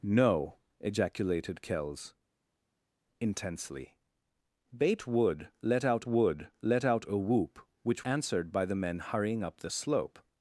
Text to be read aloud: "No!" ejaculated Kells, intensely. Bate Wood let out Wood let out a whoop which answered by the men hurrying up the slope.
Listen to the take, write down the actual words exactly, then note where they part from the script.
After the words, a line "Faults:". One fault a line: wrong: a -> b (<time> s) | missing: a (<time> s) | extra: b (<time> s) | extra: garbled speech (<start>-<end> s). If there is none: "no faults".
"No!" ejaculated Kells, intensely. Bate Wood let out Wood let out a whoop which answered by the men hurrying up the slope.
Faults:
no faults